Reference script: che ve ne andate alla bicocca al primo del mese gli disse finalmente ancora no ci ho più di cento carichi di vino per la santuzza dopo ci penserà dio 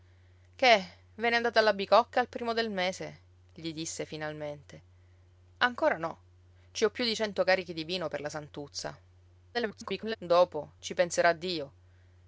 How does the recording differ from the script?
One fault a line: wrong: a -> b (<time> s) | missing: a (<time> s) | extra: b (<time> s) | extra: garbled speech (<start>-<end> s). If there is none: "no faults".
extra: garbled speech (9.5-10.2 s)